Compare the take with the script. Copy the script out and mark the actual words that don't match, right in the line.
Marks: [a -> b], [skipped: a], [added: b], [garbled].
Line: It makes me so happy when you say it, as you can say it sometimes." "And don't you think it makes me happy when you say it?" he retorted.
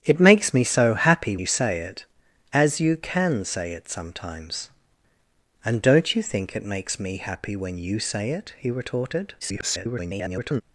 It makes me so happy [skipped: when] you say it, as you can say it sometimes." "And don't you think it makes me happy when you say it?" he retorted. [garbled]